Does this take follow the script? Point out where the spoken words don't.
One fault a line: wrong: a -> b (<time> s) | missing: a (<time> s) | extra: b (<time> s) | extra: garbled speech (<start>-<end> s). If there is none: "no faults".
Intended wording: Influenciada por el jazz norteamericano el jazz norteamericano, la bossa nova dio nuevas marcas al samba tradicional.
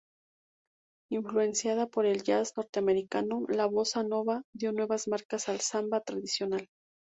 missing: el jazz norteamericano (3.5 s)